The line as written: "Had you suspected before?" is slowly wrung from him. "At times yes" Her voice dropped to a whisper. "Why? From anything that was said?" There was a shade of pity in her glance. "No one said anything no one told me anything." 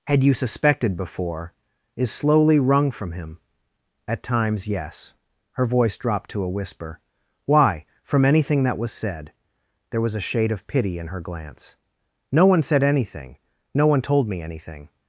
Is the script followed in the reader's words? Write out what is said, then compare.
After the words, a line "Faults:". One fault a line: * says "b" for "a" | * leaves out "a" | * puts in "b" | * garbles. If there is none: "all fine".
"Had you suspected before?" is slowly wrung from him. "At times yes" Her voice dropped to a whisper. "Why? From anything that was said?" There was a shade of pity in her glance. "No one said anything no one told me anything."
Faults:
all fine